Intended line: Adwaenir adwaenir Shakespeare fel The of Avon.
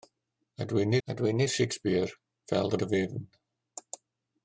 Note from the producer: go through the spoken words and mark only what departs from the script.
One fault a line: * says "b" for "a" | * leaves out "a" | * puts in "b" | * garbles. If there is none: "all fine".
all fine